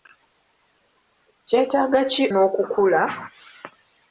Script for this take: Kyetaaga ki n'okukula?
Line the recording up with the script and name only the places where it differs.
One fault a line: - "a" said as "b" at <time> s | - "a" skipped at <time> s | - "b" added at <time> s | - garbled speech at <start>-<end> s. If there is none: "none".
none